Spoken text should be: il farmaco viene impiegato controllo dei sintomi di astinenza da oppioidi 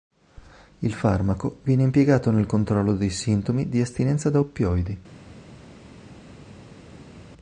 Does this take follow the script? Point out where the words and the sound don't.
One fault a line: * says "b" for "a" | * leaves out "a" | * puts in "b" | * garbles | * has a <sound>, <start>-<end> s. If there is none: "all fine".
* puts in "nel"